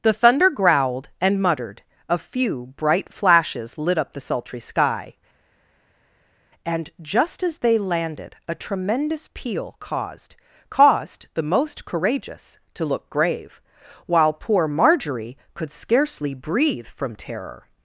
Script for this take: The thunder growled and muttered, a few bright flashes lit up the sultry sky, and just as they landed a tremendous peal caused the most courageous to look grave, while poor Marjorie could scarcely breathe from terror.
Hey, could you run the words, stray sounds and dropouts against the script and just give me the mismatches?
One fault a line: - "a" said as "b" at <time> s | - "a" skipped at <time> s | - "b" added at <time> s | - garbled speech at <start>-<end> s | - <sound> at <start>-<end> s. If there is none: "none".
- "caused" added at 10.7 s